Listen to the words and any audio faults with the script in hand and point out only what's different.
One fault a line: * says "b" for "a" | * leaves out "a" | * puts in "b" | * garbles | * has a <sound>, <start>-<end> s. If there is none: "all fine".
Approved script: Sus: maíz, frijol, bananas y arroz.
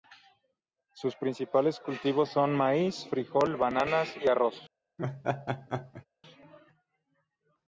* puts in "principales cultivos son"
* has a laugh, 5.0-6.1 s